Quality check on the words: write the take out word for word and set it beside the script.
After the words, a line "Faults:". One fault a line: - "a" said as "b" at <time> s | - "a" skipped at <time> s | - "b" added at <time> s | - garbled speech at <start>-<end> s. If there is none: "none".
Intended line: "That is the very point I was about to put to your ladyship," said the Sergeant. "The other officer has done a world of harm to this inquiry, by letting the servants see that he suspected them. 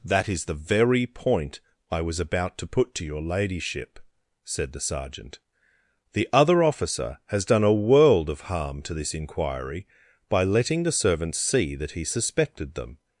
"That is the very point I was about to put to your ladyship," said the Sergeant. "The other officer has done a world of harm to this inquiry, by letting the servants see that he suspected them.
Faults:
none